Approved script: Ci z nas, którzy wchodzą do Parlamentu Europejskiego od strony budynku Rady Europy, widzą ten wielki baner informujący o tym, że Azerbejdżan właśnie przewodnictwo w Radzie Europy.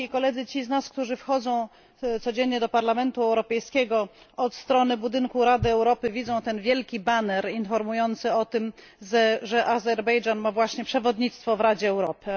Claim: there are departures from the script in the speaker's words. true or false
true